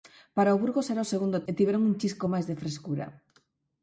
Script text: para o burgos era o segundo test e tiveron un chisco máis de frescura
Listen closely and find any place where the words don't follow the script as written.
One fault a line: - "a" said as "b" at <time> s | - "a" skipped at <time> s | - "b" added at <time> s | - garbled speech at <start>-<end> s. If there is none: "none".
- "test" skipped at 1.4 s